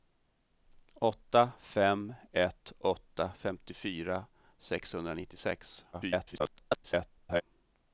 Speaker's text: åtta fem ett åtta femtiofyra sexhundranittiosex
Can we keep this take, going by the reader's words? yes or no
no